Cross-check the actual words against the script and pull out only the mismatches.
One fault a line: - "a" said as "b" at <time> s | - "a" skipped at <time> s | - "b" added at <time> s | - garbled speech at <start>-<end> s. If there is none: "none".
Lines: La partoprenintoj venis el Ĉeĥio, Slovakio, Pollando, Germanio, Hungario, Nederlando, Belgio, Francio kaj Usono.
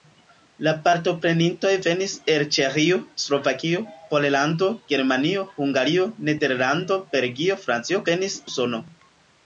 - "kaj" said as "venis" at 8.1 s